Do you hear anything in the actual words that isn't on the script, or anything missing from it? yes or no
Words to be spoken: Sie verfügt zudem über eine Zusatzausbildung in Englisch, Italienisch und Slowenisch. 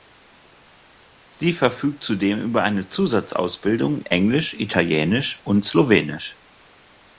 yes